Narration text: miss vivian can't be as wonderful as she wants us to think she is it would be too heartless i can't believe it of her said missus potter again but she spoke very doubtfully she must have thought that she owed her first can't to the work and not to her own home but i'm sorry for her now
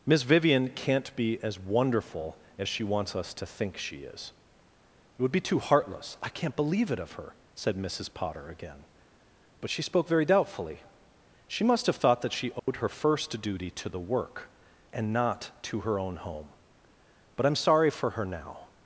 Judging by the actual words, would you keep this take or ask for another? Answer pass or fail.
fail